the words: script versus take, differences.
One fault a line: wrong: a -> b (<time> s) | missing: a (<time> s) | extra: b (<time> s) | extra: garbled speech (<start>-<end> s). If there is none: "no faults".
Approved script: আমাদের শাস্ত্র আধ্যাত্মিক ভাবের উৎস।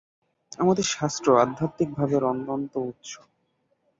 extra: অনন্ত (2.2 s)